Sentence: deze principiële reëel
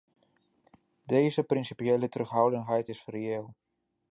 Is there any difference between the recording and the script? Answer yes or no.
yes